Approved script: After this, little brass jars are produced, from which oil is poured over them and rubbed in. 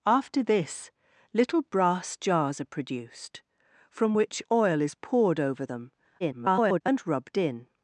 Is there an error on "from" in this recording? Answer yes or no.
no